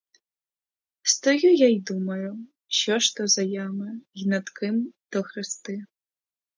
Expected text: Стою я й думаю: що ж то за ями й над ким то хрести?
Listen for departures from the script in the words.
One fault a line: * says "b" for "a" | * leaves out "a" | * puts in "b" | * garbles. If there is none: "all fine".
all fine